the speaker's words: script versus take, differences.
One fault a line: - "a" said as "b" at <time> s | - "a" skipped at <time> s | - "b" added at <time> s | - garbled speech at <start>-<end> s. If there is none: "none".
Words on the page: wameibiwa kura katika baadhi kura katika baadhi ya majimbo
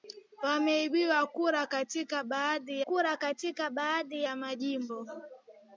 none